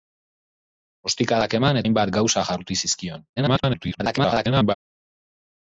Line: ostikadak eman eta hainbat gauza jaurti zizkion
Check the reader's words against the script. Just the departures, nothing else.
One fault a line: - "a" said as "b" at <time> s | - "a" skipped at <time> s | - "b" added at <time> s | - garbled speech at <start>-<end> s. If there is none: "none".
- "eta" skipped at 1.8 s
- garbled speech at 3.4-4.7 s